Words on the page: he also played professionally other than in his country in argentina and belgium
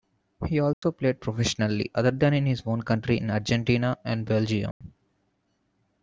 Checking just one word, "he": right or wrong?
right